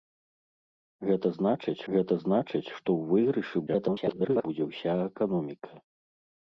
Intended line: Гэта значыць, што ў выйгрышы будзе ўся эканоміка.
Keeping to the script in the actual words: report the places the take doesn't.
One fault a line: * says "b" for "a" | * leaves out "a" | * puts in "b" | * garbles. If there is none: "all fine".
* puts in "гэта значыць"
* garbles